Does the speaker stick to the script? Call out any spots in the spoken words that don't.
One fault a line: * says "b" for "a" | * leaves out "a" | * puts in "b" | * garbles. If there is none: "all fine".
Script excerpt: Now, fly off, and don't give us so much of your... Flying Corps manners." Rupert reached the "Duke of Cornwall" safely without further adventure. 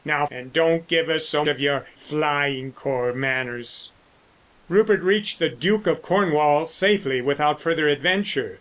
* leaves out "fly off"
* leaves out "much"